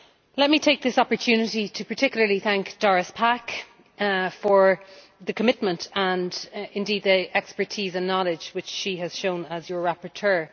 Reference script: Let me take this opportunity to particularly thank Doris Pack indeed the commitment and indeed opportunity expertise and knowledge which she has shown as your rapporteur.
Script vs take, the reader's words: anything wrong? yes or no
yes